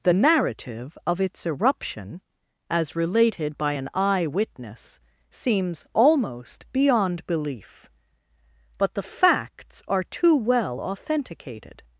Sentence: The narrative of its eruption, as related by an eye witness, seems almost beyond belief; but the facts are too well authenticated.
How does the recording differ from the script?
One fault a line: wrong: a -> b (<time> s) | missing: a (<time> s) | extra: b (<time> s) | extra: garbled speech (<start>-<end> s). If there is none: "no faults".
no faults